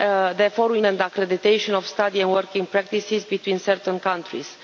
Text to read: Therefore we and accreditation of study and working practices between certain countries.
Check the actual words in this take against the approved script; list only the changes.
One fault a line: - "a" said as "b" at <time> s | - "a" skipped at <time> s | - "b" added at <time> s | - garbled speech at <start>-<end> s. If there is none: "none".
none